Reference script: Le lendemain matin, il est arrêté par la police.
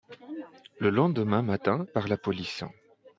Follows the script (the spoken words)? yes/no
no